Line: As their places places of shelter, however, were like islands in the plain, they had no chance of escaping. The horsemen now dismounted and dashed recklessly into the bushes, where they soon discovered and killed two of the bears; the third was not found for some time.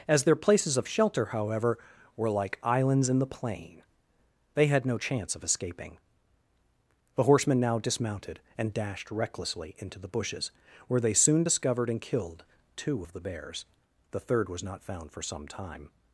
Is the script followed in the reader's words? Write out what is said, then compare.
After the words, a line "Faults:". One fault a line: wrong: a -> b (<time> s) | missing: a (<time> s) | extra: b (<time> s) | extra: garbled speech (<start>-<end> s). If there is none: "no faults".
As their places of shelter, however, were like islands in the plain, they had no chance of escaping. The horsemen now dismounted and dashed recklessly into the bushes, where they soon discovered and killed two of the bears; the third was not found for some time.
Faults:
missing: places (0.8 s)